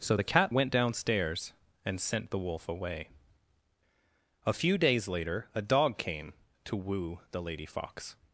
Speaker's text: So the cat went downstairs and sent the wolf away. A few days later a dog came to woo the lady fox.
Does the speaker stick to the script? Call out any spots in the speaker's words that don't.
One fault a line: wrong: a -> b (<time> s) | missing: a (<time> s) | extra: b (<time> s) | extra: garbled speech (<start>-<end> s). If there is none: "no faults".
no faults